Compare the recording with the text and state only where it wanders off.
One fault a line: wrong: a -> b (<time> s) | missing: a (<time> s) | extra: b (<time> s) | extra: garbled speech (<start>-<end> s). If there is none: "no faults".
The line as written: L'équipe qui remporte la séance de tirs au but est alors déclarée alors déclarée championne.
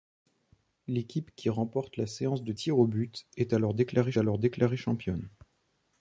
no faults